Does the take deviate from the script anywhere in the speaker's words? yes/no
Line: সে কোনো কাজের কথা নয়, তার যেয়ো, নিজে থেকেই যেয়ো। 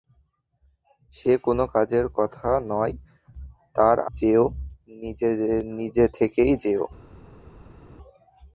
no